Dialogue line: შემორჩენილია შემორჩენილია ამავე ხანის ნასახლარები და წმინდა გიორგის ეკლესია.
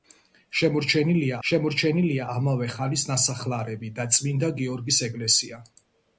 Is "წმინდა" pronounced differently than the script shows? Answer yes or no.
no